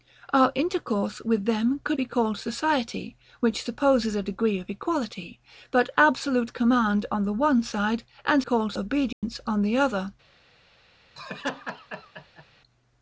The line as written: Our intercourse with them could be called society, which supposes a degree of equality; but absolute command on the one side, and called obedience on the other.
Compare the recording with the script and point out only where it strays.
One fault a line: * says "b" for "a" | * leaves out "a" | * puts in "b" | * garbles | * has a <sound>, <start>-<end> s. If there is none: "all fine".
* has a dropout, 9.1-9.2 s
* has a laugh, 11.2-12.4 s